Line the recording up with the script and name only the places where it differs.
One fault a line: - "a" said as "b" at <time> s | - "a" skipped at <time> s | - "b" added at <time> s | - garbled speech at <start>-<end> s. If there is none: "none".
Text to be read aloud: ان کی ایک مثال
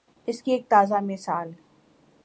- "ان" said as "اس" at 0.3 s
- "تازہ" added at 0.7 s